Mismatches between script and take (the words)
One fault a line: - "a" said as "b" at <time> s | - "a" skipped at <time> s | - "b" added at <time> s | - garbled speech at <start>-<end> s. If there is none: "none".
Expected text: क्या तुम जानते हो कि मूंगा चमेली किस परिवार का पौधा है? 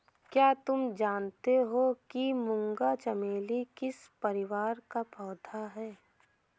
none